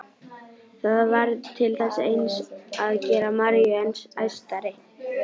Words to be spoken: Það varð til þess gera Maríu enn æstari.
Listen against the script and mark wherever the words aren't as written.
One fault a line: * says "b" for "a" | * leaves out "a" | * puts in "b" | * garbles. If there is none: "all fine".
* puts in "eins að"